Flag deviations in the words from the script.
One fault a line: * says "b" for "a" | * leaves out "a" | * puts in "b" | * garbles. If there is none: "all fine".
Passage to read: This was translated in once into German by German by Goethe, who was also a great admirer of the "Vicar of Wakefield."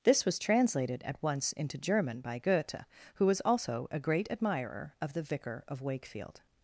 * says "at" for "in"
* leaves out "German by"